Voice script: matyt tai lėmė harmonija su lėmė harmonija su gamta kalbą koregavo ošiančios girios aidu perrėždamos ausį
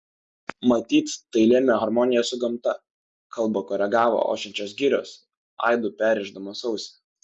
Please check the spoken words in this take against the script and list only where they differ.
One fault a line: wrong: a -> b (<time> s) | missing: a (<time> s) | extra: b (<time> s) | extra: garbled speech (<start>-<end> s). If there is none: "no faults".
missing: lėmė harmonija su (2.4 s)